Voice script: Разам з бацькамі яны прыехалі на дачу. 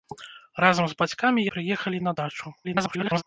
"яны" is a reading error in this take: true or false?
true